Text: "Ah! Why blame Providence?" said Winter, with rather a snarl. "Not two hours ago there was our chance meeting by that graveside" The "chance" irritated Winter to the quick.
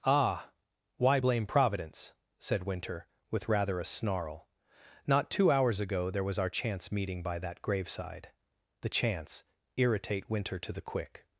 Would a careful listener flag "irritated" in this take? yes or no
yes